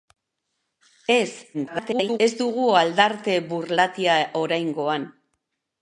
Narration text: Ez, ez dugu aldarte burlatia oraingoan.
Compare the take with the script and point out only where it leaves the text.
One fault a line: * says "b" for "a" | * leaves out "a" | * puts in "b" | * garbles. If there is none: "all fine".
* garbles